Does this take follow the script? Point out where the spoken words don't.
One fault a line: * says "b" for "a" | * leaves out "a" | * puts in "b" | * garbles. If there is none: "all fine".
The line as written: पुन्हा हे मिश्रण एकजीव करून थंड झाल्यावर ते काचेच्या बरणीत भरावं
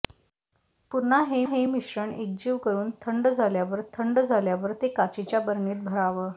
* puts in "हे"
* puts in "थंड झाल्यावर"